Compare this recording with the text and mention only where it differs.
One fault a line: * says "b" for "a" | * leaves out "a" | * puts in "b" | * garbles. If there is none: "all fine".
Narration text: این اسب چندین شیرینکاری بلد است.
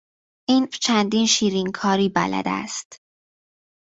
* leaves out "اسب"